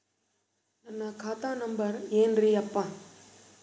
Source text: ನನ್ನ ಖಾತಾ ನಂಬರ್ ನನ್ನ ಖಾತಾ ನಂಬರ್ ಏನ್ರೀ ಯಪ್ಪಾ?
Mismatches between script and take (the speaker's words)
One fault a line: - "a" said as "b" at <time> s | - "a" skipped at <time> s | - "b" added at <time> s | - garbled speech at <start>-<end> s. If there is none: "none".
- "ನನ್ನ ಖಾತಾ ನಂಬರ್" skipped at 2.0 s